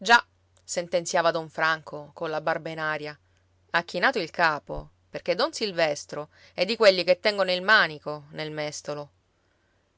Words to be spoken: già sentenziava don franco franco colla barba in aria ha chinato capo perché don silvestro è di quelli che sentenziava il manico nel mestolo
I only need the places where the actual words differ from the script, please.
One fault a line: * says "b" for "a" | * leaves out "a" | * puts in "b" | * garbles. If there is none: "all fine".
* leaves out "franco"
* puts in "il"
* says "tengono" for "sentenziava"